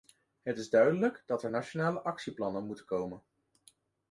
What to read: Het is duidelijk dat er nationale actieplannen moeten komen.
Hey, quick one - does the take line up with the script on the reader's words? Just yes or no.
yes